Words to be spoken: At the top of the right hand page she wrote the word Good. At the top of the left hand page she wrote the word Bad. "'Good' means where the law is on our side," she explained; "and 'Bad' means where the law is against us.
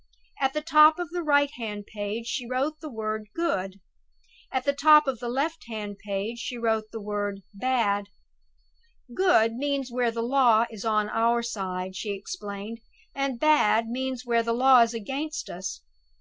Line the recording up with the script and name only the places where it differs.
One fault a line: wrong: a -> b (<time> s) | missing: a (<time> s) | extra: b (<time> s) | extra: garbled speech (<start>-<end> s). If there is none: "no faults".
no faults